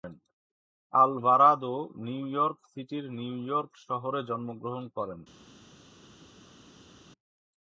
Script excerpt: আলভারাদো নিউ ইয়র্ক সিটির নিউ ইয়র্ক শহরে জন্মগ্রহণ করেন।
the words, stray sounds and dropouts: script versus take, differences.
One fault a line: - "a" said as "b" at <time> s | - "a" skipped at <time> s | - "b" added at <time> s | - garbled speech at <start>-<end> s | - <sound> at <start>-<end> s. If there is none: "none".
none